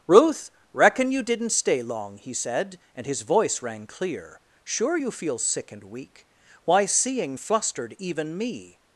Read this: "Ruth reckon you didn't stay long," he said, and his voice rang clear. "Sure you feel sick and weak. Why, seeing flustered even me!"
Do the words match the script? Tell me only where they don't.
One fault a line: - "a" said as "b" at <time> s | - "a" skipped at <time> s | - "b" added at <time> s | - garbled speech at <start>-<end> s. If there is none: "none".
none